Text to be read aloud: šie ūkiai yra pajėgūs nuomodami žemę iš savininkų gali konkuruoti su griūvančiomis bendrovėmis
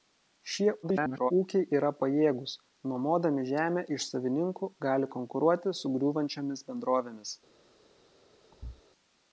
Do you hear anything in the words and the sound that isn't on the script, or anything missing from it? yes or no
yes